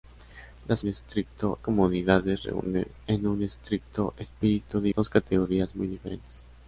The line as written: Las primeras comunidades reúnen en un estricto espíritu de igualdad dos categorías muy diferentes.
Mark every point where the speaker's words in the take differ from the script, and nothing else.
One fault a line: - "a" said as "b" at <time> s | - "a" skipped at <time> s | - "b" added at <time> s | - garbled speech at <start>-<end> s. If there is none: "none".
- "primeras" said as "estricto" at 0.9 s
- "igualdad" skipped at 4.9 s